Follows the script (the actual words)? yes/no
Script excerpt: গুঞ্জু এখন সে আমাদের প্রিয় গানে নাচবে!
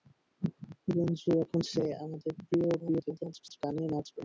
no